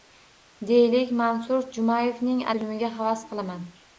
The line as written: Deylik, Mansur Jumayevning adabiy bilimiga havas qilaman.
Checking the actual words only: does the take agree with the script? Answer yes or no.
no